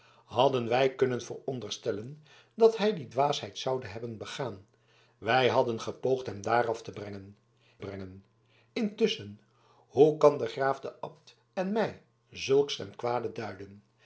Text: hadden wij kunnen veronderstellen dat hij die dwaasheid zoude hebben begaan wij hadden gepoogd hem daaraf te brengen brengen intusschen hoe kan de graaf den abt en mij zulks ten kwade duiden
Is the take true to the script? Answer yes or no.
yes